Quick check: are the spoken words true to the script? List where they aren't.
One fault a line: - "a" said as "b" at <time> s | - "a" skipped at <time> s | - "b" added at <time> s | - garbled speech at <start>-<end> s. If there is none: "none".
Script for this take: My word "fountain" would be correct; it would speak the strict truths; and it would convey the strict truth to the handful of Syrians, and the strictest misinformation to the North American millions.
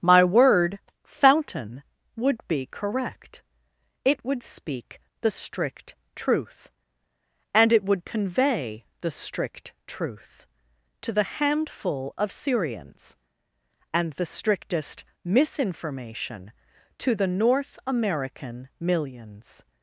- "truths" said as "truth" at 6.2 s